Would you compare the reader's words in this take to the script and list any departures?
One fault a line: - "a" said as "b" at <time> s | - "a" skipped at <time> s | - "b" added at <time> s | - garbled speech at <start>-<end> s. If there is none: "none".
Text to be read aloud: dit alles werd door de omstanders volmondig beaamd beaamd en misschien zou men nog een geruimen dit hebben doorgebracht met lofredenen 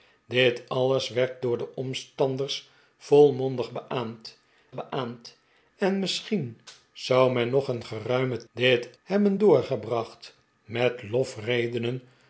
none